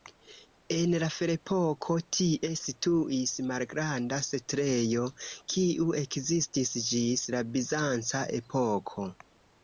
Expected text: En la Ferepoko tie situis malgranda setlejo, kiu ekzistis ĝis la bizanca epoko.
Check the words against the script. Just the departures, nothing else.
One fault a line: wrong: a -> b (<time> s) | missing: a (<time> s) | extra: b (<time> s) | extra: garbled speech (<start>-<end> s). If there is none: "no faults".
no faults